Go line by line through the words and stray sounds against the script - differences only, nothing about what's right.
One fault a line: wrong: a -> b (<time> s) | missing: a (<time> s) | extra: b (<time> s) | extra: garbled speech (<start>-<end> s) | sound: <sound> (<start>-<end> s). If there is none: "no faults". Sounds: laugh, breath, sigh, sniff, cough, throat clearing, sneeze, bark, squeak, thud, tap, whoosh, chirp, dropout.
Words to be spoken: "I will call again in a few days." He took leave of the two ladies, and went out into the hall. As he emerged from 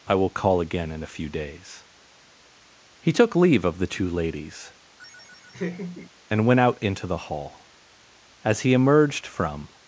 sound: laugh (5.0-6.1 s)